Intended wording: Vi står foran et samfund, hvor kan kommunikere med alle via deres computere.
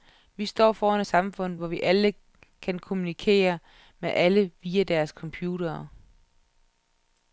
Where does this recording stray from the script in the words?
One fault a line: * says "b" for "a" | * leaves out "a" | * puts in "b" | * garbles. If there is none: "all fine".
* puts in "alle"